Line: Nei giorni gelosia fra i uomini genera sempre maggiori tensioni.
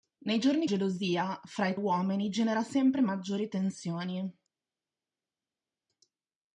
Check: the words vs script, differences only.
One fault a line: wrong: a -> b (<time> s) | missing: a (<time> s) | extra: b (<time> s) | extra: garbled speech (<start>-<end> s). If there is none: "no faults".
no faults